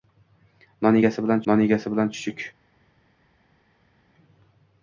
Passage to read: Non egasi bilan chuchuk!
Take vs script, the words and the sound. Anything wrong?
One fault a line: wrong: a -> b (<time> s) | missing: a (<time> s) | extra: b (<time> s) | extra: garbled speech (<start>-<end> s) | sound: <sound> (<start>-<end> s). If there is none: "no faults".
extra: non egasi bilan (1.5 s)